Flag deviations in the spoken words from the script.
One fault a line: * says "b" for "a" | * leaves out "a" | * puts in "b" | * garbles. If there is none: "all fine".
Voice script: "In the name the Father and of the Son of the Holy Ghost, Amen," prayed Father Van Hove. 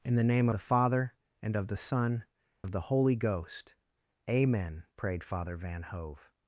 all fine